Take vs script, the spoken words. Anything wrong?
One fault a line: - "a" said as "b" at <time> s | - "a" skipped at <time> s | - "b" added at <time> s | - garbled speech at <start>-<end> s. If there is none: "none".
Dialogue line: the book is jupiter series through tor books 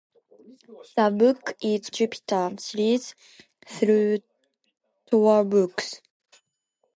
none